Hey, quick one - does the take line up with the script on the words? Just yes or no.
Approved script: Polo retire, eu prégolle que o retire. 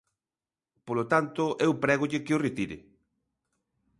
no